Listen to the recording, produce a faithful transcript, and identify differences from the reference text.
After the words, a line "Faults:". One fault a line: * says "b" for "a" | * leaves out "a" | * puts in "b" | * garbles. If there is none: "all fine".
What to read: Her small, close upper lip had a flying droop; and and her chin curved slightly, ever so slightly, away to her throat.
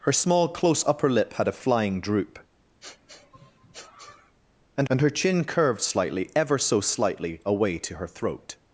Her small, close upper lip had a flying droop; and and her chin curved slightly, ever so slightly, away to her throat.
Faults:
all fine